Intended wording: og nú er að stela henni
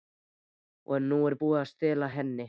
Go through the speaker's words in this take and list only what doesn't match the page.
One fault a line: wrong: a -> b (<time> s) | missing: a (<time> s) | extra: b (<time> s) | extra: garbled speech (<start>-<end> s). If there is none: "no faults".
extra: búið (1.4 s)